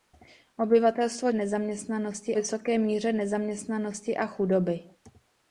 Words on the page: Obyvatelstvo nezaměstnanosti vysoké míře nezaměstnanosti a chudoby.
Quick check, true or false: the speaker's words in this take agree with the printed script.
true